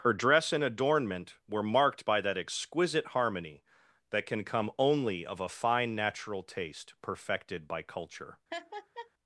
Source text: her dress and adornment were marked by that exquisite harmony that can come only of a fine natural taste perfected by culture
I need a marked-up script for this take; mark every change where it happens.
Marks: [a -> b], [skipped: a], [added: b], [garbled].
her dress and adornment were marked by that exquisite harmony that can come only of a fine natural taste perfected by culture